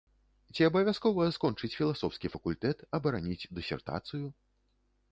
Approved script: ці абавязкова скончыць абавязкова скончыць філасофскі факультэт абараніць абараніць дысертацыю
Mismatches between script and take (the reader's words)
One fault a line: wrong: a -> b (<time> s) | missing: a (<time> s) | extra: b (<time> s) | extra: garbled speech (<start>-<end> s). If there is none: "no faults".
missing: абавязкова скончыць (1.7 s)
missing: абараніць (3.5 s)